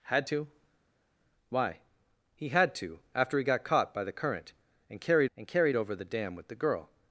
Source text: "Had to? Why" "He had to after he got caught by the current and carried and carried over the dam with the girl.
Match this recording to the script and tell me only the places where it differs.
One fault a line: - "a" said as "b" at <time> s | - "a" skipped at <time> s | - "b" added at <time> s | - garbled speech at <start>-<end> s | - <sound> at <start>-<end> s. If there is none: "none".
none